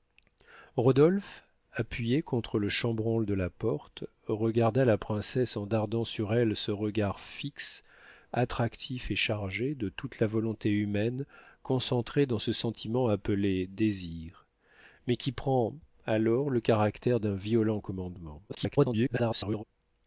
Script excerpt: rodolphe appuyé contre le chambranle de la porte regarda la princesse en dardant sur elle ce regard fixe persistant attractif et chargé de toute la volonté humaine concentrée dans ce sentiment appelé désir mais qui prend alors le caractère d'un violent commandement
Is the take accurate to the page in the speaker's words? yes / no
no